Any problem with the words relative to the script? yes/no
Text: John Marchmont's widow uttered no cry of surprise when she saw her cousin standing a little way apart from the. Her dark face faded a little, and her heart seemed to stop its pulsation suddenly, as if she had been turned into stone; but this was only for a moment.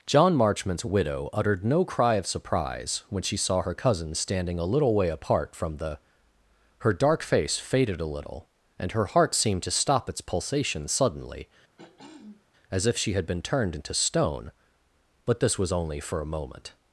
no